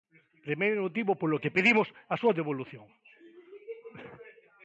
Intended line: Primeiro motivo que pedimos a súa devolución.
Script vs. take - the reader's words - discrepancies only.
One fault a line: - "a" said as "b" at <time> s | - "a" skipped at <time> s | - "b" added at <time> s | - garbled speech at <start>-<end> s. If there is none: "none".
- "polo" added at 1.2 s